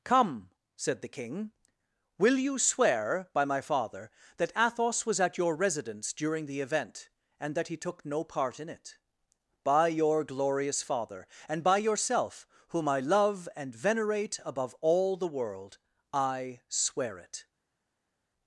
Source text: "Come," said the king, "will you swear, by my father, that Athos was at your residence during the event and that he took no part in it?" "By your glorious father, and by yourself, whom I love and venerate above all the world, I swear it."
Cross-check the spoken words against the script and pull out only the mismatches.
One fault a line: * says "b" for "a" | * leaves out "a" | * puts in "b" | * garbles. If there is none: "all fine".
all fine